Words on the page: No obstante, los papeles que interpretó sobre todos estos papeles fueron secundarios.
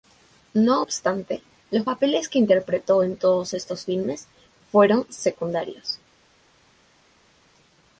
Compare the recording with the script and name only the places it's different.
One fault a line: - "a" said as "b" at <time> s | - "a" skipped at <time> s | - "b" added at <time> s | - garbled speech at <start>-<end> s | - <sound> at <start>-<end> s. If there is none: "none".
- "sobre" said as "en" at 3.0 s
- "papeles" said as "filmes" at 3.9 s